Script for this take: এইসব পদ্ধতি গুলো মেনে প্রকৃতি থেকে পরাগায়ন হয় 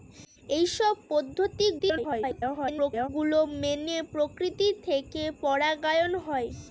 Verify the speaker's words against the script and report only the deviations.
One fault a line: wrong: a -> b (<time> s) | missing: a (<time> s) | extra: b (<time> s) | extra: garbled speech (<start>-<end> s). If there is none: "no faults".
extra: garbled speech (1.8-3.1 s)